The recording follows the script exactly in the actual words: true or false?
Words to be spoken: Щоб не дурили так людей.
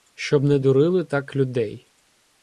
true